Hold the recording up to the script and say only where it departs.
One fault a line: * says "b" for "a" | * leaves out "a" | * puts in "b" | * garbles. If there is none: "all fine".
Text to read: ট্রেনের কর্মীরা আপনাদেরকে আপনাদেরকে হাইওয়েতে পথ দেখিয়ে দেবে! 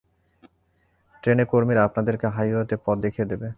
* leaves out "আপনাদেরকে"